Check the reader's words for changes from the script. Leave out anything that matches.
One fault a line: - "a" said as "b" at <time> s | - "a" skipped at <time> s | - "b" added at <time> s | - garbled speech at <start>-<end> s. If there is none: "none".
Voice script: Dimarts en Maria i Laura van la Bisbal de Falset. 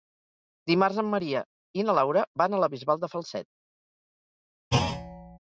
- "na" added at 1.9 s
- "a" added at 2.5 s